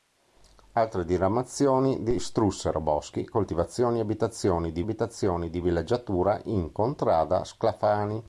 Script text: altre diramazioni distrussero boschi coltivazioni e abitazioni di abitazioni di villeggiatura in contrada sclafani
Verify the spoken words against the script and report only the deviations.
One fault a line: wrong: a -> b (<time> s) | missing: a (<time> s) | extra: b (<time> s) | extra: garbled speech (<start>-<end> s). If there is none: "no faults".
no faults